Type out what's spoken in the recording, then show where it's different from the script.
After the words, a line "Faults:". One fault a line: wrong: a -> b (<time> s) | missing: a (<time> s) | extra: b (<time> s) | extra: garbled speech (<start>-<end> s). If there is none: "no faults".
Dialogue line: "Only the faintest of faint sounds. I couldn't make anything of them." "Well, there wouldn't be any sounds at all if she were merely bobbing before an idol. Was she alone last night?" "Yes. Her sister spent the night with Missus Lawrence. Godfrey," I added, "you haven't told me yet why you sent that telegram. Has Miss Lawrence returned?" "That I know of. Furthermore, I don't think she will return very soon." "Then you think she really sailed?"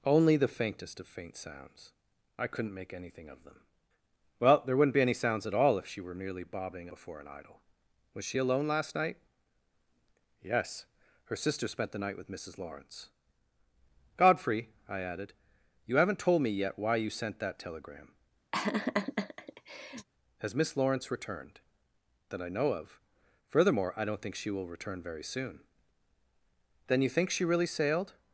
"Only the faintest of faint sounds. I couldn't make anything of them." "Well, there wouldn't be any sounds at all if she were merely bobbing before an idol. Was she alone last night?" "Yes. Her sister spent the night with Missus Lawrence. Godfrey," I added, "you haven't told me yet why you sent that telegram. Has Miss Lawrence returned?" "That I know of. Furthermore, I don't think she will return very soon." "Then you think she really sailed?"
Faults:
no faults